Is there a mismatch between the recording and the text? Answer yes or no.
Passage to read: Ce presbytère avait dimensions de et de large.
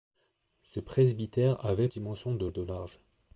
no